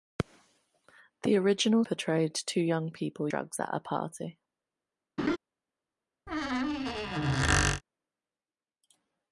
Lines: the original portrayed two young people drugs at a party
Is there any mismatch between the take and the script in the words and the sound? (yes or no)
yes